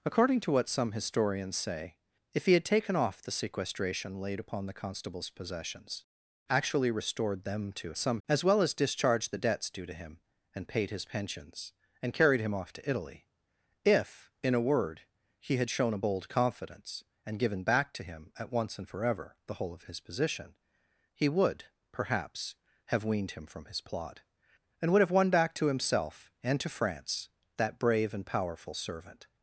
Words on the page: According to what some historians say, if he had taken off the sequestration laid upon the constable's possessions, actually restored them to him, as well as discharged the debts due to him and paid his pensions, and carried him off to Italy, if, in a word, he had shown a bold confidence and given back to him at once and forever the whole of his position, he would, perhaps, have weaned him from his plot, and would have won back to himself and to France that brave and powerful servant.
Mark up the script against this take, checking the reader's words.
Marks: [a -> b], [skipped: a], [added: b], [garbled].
According to what some historians say, if he had taken off the sequestration laid upon the constable's possessions, actually restored them to [him, -> some] as well as discharged the debts due to him and paid his pensions, and carried him off to Italy, if, in a word, he had shown a bold confidence and given back to him at once and forever the whole of his position, he would, perhaps, have weaned him from his plot, and would have won back to himself and to France that brave and powerful servant.